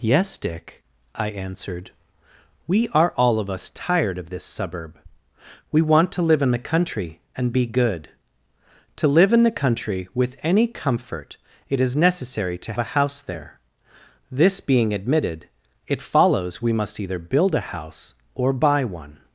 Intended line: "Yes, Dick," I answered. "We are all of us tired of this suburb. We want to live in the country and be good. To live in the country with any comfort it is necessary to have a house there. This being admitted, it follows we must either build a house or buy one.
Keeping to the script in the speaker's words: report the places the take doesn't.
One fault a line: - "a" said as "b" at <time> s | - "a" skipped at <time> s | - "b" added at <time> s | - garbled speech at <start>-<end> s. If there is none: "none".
- "have" skipped at 12.7 s